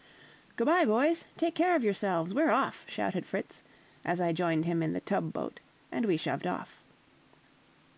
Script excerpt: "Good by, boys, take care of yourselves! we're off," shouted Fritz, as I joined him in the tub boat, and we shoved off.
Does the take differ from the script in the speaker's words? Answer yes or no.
no